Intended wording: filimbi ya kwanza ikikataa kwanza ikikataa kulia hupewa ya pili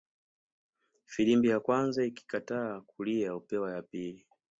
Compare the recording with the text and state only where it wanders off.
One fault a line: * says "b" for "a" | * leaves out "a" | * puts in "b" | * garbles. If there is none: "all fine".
* leaves out "kwanza ikikataa"